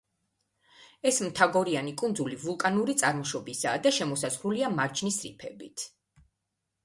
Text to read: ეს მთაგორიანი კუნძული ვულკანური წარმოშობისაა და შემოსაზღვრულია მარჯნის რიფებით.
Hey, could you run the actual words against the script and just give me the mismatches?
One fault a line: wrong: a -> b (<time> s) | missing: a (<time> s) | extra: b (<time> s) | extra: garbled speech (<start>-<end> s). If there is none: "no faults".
no faults